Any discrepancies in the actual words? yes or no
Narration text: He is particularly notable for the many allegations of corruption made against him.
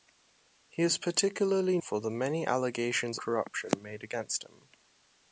yes